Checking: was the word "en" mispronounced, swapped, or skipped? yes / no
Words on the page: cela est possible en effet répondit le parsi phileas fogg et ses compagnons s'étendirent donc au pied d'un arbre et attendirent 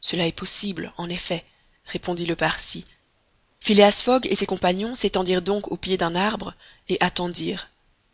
no